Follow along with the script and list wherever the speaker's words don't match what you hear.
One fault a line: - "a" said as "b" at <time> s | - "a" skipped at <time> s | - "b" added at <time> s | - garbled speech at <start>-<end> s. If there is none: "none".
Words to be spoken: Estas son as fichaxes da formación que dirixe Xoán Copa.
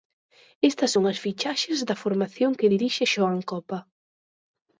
none